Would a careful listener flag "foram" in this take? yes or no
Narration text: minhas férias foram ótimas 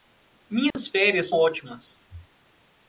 yes